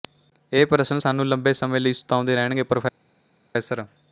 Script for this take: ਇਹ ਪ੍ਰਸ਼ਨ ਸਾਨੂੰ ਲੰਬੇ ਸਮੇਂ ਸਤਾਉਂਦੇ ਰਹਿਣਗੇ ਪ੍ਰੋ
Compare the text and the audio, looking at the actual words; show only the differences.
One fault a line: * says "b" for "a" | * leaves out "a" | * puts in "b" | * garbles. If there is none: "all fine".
* puts in "ਲਈ"